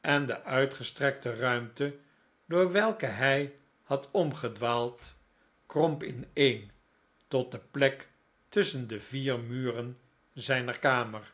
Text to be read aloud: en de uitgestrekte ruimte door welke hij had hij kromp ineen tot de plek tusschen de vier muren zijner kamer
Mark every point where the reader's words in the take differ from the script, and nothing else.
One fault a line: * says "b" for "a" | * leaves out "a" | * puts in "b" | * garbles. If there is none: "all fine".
* says "omgedwaald" for "hij"